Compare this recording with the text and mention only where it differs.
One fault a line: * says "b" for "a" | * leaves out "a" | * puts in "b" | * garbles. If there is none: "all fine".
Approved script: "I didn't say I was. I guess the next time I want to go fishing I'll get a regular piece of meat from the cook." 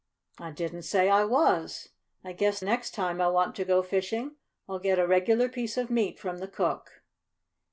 * leaves out "the"